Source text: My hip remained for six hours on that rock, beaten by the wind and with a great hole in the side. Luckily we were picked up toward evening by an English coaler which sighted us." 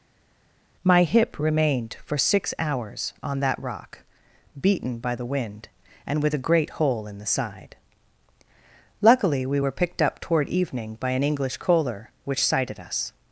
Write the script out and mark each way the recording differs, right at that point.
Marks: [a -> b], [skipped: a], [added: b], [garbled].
My hip remained for six hours on that rock, beaten by the wind and with a great hole in the side. Luckily we were picked up toward evening by an English coaler which sighted us."